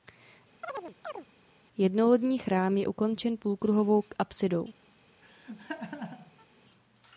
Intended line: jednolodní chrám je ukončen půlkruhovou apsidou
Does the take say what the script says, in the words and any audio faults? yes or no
no